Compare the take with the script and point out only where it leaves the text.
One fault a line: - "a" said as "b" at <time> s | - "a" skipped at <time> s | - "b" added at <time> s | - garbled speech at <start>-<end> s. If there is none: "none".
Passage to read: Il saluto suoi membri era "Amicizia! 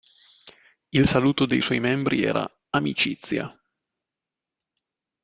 - "dei" added at 1.4 s